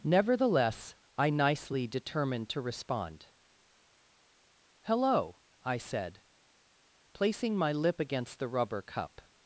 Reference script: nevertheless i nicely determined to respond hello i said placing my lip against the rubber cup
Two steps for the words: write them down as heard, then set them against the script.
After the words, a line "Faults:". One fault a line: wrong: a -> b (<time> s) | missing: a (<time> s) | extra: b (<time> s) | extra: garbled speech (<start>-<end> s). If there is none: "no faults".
nevertheless i nicely determined to respond hello i said placing my lip against the rubber cup
Faults:
no faults